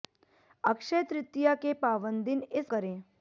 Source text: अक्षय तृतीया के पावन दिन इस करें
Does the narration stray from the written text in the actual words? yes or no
no